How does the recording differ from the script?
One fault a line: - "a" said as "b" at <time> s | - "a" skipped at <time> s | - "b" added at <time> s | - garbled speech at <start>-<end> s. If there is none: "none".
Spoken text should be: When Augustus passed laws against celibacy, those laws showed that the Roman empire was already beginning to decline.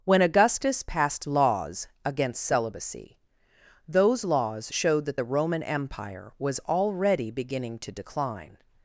none